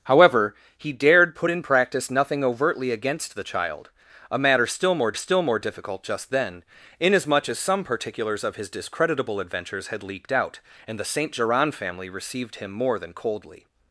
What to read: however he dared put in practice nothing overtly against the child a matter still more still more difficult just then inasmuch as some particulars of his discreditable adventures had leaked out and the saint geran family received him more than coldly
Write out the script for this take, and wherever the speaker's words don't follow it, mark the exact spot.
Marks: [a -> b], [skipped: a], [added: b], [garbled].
however he dared put in practice nothing overtly against the child a matter still more still more difficult just then inasmuch as some particulars of his discreditable adventures had leaked out and the saint geran family received him more than coldly